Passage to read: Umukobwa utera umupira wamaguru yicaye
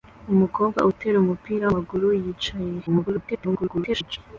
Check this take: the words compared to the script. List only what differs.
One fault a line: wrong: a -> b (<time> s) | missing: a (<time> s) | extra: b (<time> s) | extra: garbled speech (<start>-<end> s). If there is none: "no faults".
extra: garbled speech (2.9-4.2 s)